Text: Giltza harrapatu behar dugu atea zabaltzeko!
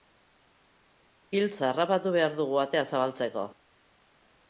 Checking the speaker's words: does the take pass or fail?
pass